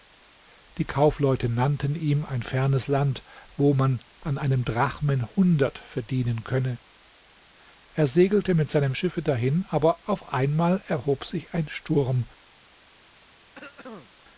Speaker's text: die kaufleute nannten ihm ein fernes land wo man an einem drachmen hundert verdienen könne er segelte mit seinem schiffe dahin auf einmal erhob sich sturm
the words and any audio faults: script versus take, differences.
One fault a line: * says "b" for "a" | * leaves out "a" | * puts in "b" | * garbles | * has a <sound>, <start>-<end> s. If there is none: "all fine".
* puts in "aber"
* puts in "ein"
* has a throat clearing, 13.5-14.1 s